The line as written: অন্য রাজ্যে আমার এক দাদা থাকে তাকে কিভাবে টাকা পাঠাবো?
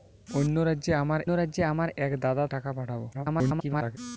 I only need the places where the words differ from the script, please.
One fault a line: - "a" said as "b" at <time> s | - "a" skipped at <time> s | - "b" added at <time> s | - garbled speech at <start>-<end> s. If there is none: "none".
- "রাজ্যে আমার" added at 1.3 s
- "থাকে তাকে কিভাবে" skipped at 2.4 s
- garbled speech at 3.1-4.0 s